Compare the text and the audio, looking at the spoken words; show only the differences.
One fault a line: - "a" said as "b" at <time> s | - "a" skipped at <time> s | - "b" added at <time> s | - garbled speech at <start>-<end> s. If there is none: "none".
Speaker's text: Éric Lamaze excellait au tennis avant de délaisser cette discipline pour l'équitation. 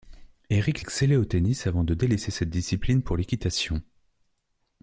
- "Lamaze" skipped at 0.8 s